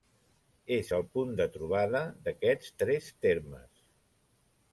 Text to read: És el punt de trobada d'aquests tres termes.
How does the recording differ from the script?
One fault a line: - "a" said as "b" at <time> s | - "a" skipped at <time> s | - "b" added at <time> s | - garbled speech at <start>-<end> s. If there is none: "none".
none